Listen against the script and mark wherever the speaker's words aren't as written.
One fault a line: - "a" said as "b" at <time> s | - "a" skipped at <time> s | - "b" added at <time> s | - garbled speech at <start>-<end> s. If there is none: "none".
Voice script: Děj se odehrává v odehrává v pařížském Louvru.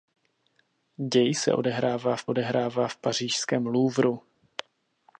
none